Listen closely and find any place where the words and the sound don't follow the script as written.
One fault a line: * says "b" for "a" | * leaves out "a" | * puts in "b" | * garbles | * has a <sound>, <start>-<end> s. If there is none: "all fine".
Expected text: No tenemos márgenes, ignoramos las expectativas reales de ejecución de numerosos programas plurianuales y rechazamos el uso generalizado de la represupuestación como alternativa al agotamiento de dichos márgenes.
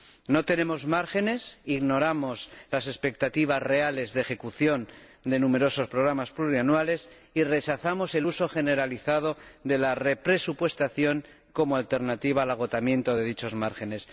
all fine